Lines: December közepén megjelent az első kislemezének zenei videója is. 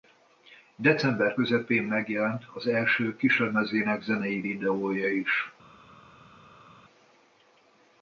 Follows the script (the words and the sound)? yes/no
yes